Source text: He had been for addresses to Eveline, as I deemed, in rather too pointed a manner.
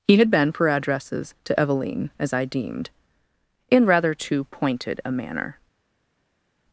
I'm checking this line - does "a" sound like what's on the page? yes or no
yes